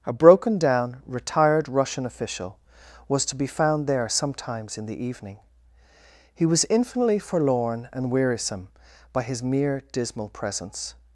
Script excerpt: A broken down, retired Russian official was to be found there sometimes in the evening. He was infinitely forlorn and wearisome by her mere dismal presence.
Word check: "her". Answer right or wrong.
wrong